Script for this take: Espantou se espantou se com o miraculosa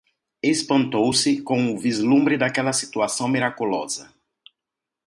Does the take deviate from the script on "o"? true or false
true